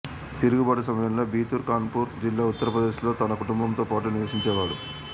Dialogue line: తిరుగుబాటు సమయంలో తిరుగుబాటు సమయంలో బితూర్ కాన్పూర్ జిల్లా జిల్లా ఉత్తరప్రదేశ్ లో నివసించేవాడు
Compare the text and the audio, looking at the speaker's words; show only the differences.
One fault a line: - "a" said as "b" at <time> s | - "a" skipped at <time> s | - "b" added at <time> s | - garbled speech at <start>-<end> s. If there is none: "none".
- "తిరుగుబాటు సమయంలో" skipped at 1.2 s
- "జిల్లా" skipped at 2.5 s
- "తన కుటుంబంతో పాటు" added at 3.2 s